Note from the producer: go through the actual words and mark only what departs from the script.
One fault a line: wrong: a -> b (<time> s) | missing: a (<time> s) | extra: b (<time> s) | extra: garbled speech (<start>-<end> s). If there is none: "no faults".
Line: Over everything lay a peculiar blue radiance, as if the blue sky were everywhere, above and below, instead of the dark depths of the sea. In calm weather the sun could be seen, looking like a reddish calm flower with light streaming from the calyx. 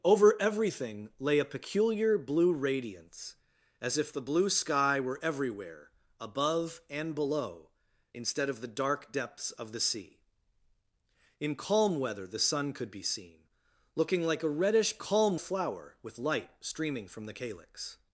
no faults